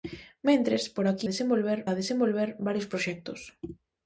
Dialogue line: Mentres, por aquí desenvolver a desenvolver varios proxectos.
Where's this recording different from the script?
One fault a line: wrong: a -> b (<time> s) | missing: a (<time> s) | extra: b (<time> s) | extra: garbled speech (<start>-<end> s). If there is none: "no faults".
no faults